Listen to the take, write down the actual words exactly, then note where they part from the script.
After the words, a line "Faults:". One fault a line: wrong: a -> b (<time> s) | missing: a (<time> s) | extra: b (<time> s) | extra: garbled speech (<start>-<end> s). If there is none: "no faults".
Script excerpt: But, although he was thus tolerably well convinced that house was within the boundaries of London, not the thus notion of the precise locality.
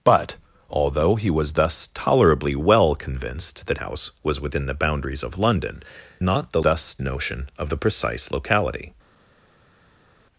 But, although he was thus tolerably well convinced that house was within the boundaries of London, not the thus notion of the precise locality.
Faults:
no faults